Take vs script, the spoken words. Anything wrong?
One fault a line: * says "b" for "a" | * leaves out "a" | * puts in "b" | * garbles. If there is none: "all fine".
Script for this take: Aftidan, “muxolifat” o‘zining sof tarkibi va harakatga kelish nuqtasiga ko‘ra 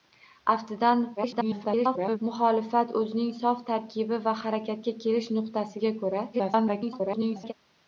* garbles
* garbles